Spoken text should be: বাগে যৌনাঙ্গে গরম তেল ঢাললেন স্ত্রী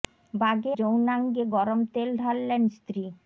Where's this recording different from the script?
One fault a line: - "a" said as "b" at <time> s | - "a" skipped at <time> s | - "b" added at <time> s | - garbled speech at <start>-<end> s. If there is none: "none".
none